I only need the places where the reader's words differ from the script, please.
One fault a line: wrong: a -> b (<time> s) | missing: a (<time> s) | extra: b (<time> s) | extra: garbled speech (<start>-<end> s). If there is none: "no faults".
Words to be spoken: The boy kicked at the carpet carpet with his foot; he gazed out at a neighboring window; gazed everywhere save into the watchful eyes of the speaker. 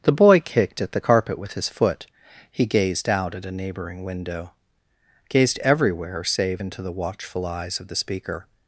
missing: carpet (1.4 s)